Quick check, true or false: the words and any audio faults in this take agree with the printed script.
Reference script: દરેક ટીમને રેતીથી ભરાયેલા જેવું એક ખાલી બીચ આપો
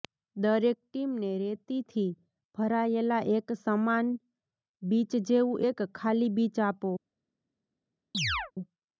false